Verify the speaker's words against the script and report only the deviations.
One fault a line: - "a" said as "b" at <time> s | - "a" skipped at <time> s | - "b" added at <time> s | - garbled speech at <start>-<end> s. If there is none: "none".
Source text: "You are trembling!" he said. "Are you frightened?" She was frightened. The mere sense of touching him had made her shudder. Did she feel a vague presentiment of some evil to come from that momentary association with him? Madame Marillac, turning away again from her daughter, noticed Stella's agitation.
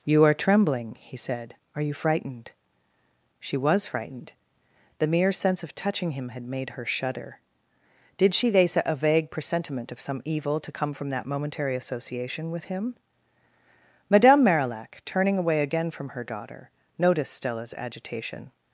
- "feel" said as "thesa" at 8.5 s